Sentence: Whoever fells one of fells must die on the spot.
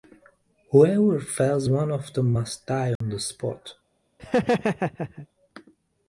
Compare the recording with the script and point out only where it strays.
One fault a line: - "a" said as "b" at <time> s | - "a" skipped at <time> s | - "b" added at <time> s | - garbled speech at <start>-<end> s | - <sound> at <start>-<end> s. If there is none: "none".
- "fells" said as "them" at 2.1 s
- dropout at 3.0-3.0 s
- laugh at 4.2-5.3 s